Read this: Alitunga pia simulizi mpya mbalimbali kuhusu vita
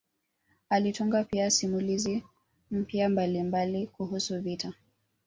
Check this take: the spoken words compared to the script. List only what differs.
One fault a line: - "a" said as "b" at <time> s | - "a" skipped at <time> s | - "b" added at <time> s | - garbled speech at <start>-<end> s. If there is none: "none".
none